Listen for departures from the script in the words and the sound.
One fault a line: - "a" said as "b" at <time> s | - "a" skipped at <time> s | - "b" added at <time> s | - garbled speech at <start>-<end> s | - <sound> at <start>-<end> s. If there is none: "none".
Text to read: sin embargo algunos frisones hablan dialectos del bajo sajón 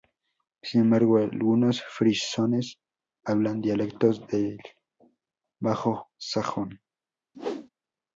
- whoosh at 7.3-7.7 s